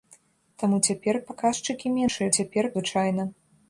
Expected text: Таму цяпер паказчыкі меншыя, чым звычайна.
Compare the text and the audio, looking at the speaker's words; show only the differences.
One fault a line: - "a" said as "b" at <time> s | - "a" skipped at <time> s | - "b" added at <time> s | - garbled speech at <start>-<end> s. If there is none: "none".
- "чым" said as "цяпер" at 2.4 s